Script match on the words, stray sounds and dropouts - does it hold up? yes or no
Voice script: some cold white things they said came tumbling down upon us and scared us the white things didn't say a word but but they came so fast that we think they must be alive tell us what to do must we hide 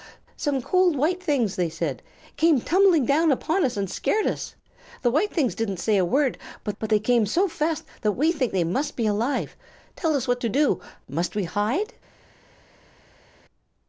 yes